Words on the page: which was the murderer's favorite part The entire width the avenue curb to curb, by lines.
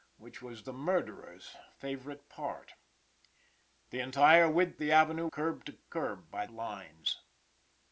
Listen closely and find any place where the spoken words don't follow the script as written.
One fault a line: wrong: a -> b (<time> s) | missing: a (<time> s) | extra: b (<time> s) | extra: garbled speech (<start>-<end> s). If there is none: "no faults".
no faults